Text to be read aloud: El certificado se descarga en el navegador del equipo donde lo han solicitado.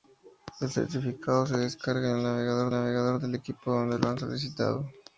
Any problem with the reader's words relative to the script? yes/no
yes